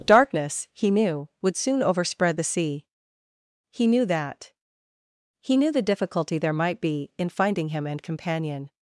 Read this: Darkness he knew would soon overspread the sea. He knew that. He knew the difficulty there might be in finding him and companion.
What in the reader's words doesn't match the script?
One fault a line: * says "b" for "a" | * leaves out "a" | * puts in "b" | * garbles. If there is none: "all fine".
all fine